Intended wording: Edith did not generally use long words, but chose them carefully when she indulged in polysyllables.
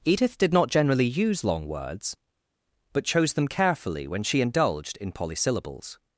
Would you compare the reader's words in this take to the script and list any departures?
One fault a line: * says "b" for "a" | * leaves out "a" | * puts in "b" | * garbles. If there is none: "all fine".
all fine